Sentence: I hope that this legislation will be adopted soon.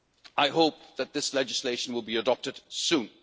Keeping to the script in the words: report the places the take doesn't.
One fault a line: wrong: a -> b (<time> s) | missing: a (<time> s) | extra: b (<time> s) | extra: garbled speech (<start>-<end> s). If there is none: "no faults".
no faults